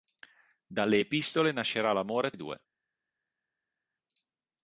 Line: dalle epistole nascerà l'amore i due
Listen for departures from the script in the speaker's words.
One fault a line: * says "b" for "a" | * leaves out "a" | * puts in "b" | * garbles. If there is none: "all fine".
all fine